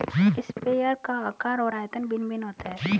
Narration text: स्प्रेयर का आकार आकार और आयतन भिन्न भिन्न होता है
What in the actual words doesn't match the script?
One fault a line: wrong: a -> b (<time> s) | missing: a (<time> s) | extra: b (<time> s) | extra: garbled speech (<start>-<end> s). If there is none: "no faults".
missing: आकार (1.6 s)